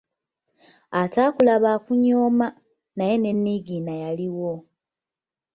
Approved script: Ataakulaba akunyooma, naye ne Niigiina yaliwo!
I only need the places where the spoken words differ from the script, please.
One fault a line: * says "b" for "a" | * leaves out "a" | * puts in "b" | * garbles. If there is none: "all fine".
all fine